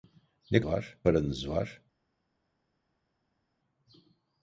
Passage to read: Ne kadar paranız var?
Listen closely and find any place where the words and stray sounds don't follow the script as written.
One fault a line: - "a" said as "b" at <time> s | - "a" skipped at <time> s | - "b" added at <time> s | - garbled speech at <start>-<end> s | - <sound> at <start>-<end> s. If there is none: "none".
- "kadar" said as "var" at 0.6 s